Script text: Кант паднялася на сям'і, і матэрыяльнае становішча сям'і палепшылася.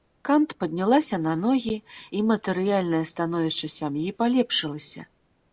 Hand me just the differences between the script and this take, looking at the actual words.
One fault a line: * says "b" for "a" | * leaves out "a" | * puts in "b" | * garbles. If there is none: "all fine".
* says "ногі" for "сям'і"